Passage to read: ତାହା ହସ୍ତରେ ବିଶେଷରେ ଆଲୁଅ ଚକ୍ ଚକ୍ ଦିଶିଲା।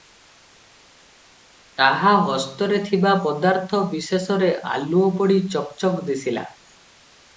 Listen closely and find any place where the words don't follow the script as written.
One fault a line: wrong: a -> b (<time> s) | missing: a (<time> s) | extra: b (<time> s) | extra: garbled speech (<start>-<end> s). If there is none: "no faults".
extra: ଥିବା ପଦାର୍ଥ (2.9 s)
extra: ପଡ଼ି (5.2 s)